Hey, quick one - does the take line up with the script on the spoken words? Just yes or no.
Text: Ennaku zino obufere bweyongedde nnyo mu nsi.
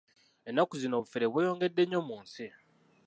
yes